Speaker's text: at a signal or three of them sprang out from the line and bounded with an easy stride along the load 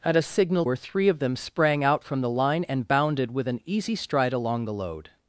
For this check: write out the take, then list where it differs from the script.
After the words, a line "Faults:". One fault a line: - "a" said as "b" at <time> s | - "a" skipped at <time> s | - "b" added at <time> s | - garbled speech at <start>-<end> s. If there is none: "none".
at a signal or three of them sprang out from the line and bounded with an easy stride along the load
Faults:
none